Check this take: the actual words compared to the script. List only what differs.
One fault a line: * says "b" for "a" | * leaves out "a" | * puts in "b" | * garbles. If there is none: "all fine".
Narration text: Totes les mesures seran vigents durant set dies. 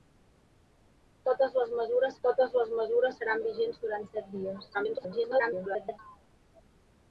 * puts in "totes les mesures"
* garbles